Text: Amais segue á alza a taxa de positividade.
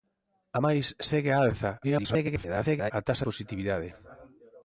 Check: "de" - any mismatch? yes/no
yes